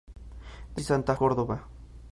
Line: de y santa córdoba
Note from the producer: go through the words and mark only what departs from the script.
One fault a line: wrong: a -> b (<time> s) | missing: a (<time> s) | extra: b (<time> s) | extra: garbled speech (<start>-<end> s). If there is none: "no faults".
no faults